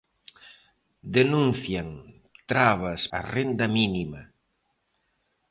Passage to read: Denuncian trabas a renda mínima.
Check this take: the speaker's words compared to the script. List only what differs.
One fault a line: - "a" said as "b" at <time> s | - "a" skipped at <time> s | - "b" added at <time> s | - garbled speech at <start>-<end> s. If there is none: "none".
none